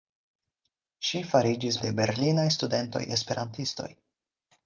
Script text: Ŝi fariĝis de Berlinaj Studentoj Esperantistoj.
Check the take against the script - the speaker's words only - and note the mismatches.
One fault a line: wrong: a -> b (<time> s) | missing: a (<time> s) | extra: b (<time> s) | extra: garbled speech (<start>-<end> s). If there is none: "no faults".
no faults